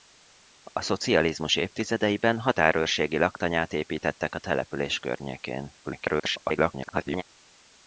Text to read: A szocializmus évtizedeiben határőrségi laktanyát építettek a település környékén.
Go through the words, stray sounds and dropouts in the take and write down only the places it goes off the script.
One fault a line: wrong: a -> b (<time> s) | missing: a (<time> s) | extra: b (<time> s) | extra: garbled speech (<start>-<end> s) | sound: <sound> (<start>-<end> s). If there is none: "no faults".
extra: garbled speech (5.8-7.2 s)